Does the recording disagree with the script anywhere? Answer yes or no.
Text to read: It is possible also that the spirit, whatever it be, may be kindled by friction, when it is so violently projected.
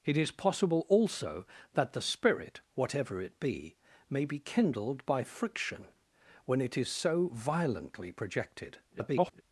yes